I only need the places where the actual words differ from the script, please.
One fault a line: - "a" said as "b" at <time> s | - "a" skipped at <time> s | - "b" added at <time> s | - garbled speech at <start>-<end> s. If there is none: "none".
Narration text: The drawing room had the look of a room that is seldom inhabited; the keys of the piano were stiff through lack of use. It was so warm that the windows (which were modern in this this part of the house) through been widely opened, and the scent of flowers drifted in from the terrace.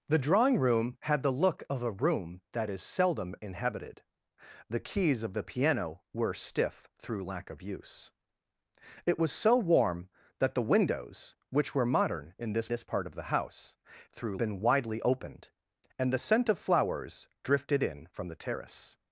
none